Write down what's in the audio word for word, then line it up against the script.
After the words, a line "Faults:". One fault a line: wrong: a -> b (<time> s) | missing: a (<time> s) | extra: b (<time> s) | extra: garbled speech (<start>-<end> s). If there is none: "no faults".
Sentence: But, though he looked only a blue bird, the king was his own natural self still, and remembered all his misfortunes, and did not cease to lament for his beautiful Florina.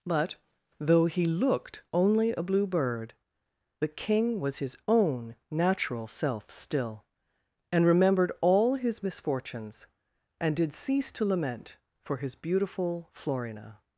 But, though he looked only a blue bird, the king was his own natural self still, and remembered all his misfortunes, and did cease to lament for his beautiful Florina.
Faults:
missing: not (10.7 s)